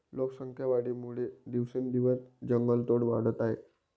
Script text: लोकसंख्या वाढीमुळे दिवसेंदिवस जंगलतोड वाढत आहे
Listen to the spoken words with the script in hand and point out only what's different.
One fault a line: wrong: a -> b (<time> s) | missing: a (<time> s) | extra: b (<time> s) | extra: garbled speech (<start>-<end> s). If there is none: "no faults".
no faults